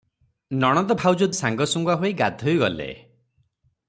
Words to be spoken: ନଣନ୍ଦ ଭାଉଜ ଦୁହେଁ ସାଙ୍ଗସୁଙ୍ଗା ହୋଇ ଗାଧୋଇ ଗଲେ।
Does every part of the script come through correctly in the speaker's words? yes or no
no